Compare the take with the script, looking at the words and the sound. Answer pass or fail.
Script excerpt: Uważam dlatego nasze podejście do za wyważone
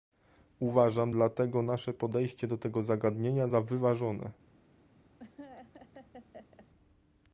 fail